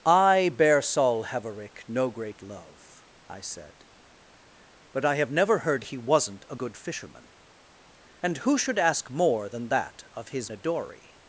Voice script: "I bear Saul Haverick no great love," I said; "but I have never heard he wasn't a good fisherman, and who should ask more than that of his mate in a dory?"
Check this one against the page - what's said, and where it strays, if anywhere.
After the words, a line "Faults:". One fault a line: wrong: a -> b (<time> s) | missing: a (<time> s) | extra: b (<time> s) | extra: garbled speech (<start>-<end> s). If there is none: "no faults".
"I bear Saul Haverick no great love," I said; "but I have never heard he wasn't a good fisherman, and who should ask more than that of his a dory?"
Faults:
missing: mate in (10.5 s)